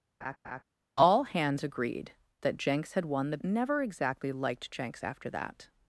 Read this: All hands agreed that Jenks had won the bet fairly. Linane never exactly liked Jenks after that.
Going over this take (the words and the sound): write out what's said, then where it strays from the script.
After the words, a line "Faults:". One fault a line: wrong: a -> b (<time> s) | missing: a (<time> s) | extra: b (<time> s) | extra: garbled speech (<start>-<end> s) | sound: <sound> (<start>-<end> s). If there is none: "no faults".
All hands agreed that Jenks had won the never exactly liked Jenks after that.
Faults:
sound: laugh (0.2-0.6 s)
missing: bet fairly Linane (3.4 s)